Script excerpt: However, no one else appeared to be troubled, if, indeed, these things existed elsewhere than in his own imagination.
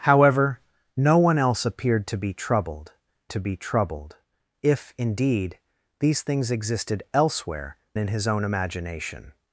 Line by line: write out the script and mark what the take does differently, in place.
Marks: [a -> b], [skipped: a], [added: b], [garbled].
However, no one else appeared to be troubled, [added: to be troubled] if, indeed, these things existed elsewhere [skipped: than] in his own imagination.